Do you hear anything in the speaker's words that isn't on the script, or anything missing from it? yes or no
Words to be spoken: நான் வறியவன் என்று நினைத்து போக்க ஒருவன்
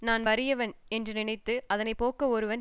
yes